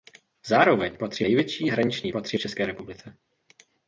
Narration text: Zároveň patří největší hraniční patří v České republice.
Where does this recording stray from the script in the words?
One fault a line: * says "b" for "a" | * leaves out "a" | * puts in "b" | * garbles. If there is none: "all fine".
all fine